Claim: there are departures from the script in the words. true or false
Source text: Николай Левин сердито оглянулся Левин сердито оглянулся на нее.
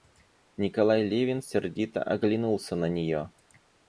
true